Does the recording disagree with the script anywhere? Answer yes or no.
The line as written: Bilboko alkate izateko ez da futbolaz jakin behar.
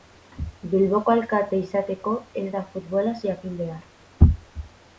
no